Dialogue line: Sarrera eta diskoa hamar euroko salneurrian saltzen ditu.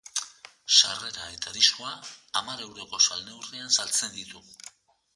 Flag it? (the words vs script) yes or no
no